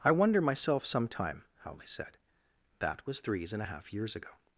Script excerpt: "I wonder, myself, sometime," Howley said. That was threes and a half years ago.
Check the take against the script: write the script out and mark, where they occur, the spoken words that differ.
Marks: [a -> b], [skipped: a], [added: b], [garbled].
"I wonder, myself, sometime," Howley said. That was threes and a half years ago.